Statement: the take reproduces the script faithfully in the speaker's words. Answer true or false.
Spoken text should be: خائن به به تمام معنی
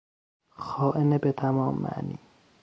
false